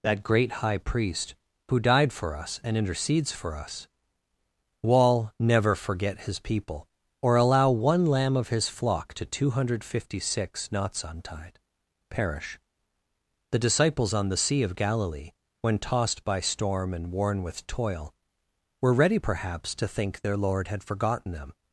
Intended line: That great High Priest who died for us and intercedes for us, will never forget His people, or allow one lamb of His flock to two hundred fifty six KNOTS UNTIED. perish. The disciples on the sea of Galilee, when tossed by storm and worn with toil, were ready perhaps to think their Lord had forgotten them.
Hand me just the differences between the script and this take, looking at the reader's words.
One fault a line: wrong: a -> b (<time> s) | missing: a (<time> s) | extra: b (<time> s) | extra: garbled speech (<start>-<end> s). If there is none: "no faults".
wrong: will -> wall (4.8 s)